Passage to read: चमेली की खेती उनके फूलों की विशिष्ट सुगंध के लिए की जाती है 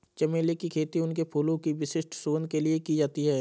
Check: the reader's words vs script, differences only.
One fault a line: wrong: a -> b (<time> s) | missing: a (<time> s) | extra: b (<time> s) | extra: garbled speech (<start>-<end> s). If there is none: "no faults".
no faults